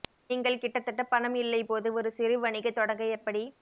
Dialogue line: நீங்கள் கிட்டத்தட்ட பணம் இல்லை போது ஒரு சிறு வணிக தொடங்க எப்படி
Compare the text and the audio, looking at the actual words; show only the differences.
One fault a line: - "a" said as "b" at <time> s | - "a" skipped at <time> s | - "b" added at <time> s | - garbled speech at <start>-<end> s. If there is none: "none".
none